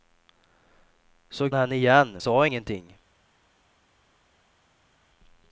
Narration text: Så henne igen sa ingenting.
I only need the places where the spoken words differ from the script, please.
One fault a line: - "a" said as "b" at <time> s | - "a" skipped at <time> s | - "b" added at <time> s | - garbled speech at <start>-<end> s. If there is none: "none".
none